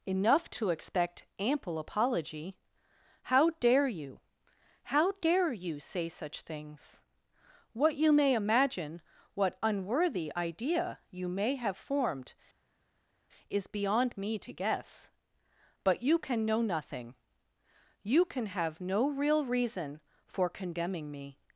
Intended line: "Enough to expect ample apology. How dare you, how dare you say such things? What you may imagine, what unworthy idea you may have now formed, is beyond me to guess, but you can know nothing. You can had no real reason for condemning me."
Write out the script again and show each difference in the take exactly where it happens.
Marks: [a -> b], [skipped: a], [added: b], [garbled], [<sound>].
"Enough to expect ample apology. How dare you, how dare you say such things? What you may imagine, what unworthy idea you may have [skipped: now] formed, is beyond me to guess, but you can know nothing. You can [had -> have] no real reason for condemning me."